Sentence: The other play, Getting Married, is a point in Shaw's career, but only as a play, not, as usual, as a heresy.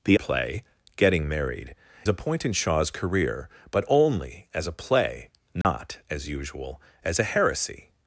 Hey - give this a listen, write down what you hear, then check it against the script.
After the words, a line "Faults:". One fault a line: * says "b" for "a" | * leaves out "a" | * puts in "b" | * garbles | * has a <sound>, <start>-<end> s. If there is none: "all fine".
The play, Getting Married, a point in Shaw's career, but only as a play, not, as usual, as a heresy.
Faults:
* leaves out "other"
* leaves out "is"
* has a dropout, 5.6-5.6 s